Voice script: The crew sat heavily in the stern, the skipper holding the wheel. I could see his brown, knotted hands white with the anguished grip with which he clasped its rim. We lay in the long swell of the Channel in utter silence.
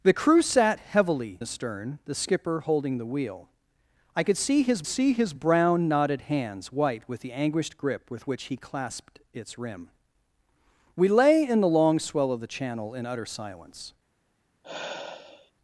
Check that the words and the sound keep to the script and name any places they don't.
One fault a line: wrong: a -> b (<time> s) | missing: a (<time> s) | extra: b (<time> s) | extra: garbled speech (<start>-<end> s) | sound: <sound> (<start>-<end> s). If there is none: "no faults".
missing: in (1.4 s)
extra: see his (4.9 s)
sound: sigh (14.6-15.5 s)